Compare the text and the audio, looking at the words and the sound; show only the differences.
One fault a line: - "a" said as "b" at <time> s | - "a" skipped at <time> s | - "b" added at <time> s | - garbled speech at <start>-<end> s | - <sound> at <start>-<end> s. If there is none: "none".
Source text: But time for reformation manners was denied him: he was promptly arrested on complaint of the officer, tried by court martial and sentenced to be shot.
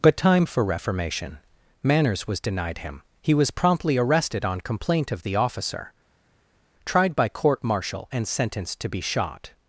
none